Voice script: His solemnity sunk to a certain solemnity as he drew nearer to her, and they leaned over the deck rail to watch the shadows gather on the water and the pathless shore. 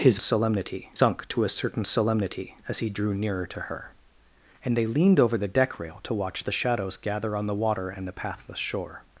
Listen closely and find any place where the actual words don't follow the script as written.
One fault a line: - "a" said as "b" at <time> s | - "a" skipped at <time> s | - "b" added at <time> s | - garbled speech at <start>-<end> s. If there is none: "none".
none